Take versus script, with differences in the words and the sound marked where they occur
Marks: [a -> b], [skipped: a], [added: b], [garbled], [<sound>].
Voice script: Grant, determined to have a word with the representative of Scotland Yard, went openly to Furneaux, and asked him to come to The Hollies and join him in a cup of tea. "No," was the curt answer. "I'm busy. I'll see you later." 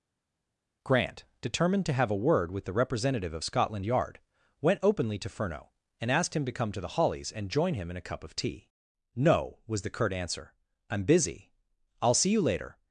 Grant, determined to have a word with the representative of Scotland Yard, went openly to Furneaux, and asked him to come to The Hollies and join him in a cup of tea. "No," was the curt answer. "I'm busy. I'll see you later."